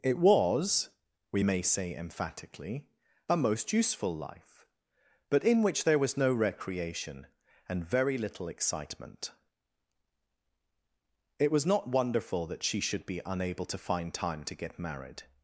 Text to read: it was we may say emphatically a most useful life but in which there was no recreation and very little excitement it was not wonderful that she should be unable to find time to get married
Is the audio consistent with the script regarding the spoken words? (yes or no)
yes